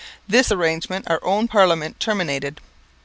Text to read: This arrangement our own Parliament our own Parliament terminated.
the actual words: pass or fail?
fail